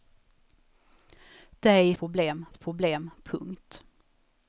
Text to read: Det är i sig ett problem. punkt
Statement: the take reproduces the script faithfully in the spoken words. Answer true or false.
false